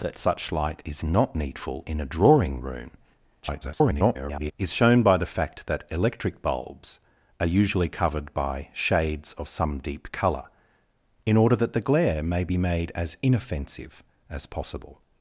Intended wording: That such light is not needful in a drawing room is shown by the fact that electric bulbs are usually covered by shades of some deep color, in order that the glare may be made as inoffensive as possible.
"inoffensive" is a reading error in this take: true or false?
false